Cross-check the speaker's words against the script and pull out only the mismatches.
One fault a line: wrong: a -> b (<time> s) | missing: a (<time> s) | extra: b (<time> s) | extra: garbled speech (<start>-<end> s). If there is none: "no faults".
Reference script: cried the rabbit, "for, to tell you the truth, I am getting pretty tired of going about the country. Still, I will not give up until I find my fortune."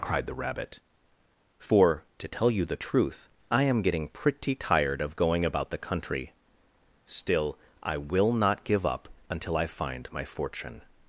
no faults